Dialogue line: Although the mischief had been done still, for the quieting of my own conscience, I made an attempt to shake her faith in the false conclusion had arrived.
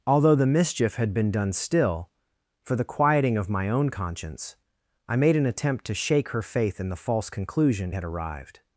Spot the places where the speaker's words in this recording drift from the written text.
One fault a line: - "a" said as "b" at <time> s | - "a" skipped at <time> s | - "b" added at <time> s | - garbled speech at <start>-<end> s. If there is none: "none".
none